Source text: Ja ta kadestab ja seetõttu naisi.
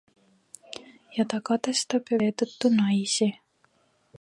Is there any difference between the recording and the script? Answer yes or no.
no